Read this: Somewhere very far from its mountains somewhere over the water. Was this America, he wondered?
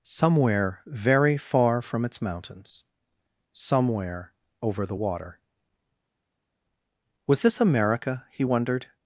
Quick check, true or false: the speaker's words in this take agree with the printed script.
true